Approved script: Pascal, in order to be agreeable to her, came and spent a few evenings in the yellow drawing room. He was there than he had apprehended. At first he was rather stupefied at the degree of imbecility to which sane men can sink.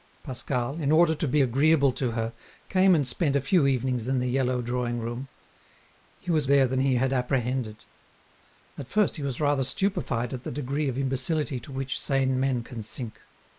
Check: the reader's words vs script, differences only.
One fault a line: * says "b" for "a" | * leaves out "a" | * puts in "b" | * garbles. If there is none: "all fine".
all fine